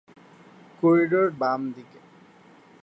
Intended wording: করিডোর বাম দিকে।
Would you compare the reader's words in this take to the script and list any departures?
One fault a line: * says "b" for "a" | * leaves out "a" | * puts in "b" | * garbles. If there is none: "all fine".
all fine